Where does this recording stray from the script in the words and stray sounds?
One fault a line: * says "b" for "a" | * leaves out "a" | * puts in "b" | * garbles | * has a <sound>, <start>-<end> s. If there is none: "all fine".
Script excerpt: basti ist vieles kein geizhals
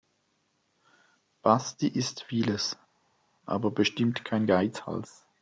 * puts in "aber bestimmt"